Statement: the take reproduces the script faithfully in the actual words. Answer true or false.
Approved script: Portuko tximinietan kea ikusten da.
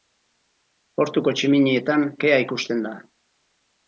true